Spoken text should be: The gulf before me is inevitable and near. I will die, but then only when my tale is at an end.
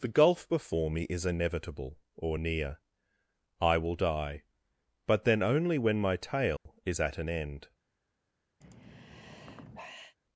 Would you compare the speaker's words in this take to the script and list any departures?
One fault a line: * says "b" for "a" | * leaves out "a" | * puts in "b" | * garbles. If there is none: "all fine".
* says "or" for "and"